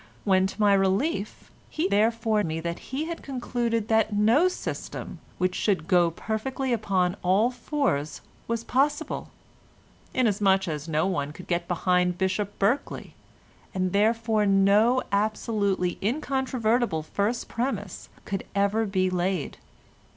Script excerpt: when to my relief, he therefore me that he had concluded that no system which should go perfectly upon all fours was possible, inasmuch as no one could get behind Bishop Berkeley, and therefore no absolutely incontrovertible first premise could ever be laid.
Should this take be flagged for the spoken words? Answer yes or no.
no